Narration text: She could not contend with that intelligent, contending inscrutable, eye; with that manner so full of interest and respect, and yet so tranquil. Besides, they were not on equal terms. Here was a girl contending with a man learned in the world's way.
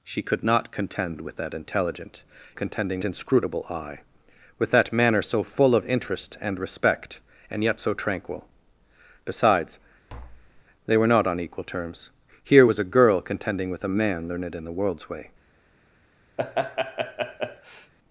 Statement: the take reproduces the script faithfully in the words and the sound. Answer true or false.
false